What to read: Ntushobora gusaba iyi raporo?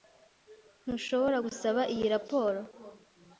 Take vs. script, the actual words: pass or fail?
pass